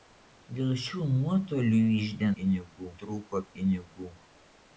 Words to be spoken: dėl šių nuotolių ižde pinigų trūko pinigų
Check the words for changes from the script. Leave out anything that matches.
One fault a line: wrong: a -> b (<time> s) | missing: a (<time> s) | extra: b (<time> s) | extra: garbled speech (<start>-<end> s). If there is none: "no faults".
no faults